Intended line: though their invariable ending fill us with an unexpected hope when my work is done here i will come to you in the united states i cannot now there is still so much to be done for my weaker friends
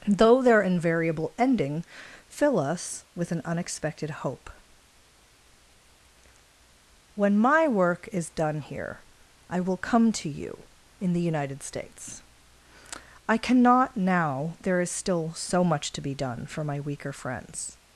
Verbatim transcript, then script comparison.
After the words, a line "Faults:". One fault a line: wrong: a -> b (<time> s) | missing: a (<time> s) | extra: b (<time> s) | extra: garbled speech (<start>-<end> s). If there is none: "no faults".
though their invariable ending fill us with an unexpected hope when my work is done here i will come to you in the united states i cannot now there is still so much to be done for my weaker friends
Faults:
no faults